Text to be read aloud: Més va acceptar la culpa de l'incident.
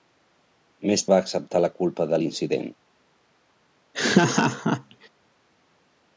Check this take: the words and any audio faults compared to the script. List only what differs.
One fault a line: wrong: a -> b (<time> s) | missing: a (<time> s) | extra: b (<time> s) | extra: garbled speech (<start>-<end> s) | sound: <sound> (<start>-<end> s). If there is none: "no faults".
sound: laugh (3.9-5.1 s)